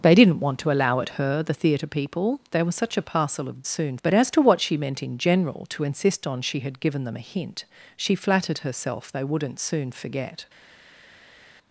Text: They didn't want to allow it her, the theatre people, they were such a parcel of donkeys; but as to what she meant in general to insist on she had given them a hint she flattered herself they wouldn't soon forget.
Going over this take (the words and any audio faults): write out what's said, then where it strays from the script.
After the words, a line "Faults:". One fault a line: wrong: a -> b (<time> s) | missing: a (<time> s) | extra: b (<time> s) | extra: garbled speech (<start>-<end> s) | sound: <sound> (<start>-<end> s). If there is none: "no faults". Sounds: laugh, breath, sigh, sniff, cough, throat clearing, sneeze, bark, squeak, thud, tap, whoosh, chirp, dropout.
They didn't want to allow it her, the theatre people, they were such a parcel of soon; but as to what she meant in general to insist on she had given them a hint she flattered herself they wouldn't soon forget.
Faults:
wrong: donkeys -> soon (3.7 s)